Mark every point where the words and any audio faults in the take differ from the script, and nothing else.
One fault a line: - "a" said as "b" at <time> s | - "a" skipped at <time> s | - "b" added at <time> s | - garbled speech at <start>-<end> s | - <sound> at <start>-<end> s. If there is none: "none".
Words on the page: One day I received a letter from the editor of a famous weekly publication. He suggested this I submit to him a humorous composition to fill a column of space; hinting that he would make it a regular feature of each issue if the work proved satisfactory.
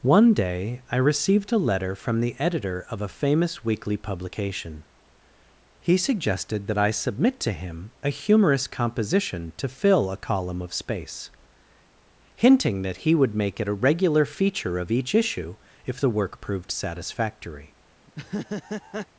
- "this" said as "that" at 6.7 s
- laugh at 18.1-19.1 s